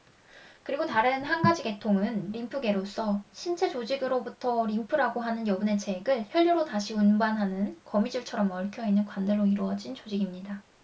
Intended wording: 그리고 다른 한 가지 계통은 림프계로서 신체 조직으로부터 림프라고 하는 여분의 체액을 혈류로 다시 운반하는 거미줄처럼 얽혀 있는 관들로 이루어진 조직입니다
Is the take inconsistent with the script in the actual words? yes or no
no